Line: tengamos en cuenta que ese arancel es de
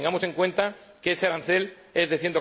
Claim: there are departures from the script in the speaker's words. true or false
false